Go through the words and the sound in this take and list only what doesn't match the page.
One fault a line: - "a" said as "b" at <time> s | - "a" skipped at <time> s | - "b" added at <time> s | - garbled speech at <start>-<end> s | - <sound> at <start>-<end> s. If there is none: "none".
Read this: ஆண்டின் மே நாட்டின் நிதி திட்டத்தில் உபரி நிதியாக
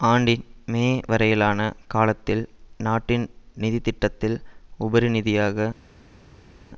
- "வரையிலான காலத்தில்" added at 1.1 s